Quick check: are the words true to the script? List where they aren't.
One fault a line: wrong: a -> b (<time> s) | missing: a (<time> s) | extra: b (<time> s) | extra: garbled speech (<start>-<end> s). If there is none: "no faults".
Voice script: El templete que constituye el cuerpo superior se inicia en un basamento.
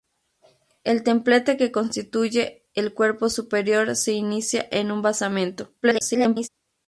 extra: garbled speech (5.8-6.5 s)